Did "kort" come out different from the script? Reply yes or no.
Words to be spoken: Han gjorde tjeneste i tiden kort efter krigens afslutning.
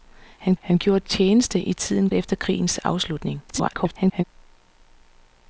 yes